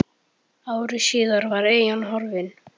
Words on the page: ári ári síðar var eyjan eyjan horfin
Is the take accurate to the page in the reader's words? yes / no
no